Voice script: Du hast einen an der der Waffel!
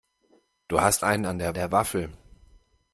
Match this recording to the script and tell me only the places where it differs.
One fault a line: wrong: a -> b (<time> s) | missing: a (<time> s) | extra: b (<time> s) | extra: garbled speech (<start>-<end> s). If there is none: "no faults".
no faults